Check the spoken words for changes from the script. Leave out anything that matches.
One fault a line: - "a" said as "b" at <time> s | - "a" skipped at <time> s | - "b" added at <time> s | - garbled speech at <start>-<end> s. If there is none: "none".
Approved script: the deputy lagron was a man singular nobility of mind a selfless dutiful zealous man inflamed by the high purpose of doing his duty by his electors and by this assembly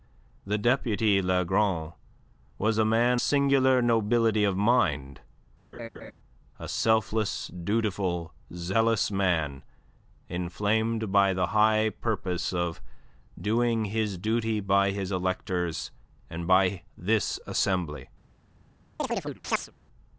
none